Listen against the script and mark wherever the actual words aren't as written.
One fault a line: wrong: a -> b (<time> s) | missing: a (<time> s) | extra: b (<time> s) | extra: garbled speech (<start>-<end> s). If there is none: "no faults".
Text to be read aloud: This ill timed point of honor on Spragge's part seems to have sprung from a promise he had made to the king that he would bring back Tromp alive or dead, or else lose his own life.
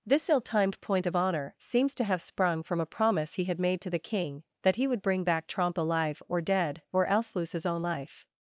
missing: on Spragge's part (1.5 s)